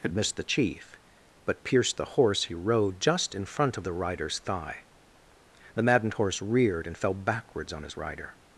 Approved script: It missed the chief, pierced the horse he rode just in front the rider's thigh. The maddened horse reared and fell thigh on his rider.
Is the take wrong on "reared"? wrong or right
right